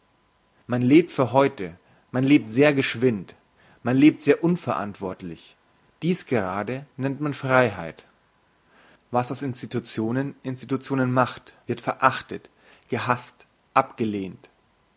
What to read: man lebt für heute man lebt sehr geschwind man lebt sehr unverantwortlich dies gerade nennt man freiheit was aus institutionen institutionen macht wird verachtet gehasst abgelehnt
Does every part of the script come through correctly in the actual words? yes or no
yes